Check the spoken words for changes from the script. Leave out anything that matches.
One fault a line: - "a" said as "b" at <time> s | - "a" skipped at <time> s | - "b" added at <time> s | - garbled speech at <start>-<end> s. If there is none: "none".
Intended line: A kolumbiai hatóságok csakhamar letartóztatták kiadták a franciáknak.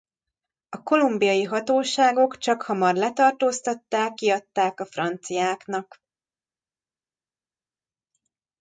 none